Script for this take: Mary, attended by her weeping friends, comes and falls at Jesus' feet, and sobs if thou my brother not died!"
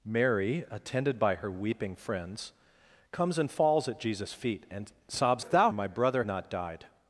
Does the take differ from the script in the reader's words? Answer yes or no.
no